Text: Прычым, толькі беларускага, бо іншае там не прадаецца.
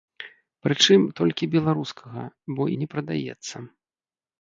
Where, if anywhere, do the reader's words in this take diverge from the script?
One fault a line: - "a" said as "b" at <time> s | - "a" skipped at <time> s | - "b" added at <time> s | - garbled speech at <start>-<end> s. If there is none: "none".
- "іншае там" skipped at 2.6 s